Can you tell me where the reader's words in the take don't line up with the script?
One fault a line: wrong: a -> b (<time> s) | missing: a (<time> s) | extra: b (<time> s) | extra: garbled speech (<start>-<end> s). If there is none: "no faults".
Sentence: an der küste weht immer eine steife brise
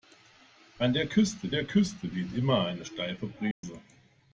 extra: der küste (1.5 s)